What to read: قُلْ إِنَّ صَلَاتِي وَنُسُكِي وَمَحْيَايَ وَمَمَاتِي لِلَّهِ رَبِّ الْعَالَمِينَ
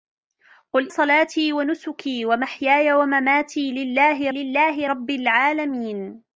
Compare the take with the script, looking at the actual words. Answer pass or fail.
fail